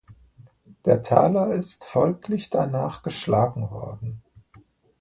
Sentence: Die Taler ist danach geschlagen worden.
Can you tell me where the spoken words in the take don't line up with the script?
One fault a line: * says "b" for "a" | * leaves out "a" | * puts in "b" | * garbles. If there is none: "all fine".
* says "Der" for "Die"
* puts in "folglich"